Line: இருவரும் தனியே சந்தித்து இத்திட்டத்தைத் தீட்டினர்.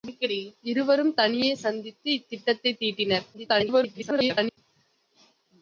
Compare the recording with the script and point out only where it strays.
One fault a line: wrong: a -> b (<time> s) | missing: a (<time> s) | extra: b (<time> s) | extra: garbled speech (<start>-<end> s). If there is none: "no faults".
extra: garbled speech (3.3-4.6 s)